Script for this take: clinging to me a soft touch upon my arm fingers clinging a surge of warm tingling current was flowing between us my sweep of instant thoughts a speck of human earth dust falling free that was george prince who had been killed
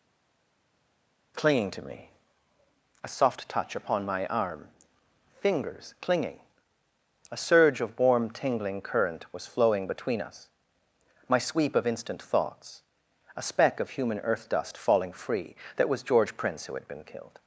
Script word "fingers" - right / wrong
right